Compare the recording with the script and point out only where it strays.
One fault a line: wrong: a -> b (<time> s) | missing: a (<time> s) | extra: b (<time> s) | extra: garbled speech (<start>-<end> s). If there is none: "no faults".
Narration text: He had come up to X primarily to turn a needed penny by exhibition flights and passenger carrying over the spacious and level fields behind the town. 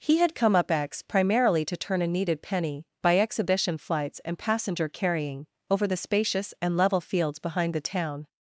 missing: to (0.7 s)